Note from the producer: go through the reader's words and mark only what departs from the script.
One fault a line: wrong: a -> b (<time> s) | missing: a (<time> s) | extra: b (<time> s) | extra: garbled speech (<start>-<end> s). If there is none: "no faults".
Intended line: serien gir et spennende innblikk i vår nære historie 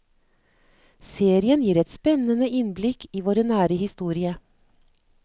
no faults